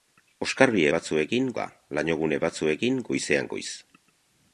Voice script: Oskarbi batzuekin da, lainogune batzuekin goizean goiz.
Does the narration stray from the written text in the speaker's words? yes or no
no